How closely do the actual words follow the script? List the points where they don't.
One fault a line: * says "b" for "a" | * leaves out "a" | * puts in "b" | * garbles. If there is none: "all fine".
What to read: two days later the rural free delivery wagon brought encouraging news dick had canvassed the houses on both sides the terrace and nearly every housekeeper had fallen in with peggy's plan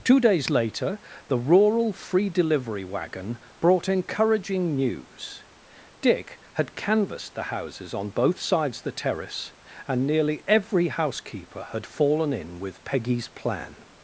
all fine